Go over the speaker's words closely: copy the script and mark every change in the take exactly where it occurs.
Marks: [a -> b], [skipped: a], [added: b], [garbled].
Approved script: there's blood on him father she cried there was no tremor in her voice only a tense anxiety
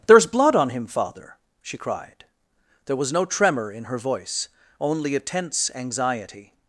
there's blood on him father she cried there was no tremor in her voice only a tense anxiety